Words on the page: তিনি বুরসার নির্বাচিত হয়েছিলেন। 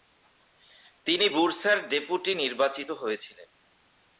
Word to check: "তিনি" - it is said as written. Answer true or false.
true